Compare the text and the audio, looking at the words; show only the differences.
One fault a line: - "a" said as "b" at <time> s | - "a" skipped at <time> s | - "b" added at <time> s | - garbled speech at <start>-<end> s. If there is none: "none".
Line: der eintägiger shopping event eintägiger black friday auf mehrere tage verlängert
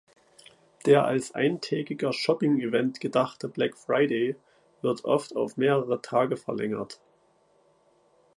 - "als" added at 1.1 s
- "eintägiger" said as "gedachte" at 3.0 s
- "wird oft" added at 4.8 s